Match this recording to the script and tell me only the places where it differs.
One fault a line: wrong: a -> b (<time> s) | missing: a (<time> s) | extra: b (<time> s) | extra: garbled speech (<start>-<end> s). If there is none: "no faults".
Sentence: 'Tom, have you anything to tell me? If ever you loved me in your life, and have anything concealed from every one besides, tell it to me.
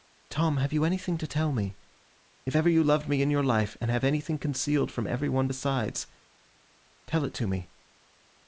no faults